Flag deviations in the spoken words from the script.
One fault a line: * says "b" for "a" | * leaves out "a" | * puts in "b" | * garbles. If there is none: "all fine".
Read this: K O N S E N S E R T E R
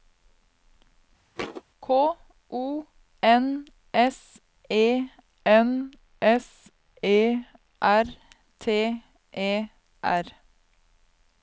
all fine